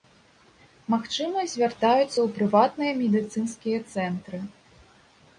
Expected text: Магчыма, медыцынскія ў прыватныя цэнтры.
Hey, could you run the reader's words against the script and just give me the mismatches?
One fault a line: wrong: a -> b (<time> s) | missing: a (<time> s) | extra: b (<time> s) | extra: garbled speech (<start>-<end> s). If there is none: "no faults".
wrong: медыцынскія -> звяртаюцца (1.5 s)
extra: медыцынскія (3.0 s)